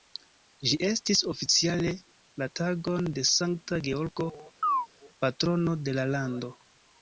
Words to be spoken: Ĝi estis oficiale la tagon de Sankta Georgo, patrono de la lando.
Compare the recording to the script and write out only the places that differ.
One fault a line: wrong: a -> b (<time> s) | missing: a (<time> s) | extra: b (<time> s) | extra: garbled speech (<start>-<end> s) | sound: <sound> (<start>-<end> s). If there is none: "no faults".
sound: chirp (4.6-4.9 s)